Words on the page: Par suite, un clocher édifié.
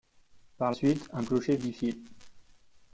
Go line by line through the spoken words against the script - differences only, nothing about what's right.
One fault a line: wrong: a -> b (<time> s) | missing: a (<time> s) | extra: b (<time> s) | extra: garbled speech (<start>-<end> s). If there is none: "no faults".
no faults